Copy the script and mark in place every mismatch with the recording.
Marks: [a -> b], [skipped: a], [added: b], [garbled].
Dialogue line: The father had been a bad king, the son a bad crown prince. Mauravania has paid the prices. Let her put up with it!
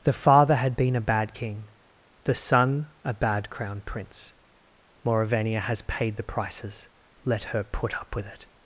The father had been a bad king, the son a bad crown prince. Mauravania has paid the prices. Let her put up with it!